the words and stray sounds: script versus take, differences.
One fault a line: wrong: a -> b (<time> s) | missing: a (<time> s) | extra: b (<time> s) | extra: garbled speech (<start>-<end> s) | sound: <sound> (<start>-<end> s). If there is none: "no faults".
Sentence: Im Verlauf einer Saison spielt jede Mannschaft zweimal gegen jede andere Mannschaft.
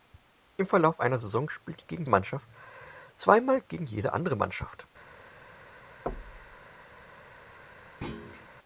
wrong: jede -> gegen (1.8 s)
sound: thud (6.1-6.6 s)
sound: thud (8.0-8.5 s)